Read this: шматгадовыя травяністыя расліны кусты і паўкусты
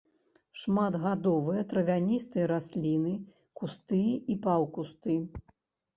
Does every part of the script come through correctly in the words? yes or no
yes